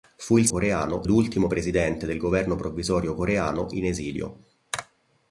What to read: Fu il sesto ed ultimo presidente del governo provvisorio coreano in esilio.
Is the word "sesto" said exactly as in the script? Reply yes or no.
no